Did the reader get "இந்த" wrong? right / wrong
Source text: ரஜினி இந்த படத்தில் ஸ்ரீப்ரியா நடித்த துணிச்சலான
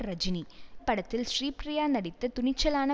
wrong